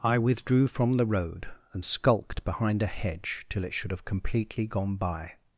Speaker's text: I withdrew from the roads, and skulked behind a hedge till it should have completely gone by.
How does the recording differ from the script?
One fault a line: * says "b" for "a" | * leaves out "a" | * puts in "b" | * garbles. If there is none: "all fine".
* says "road" for "roads"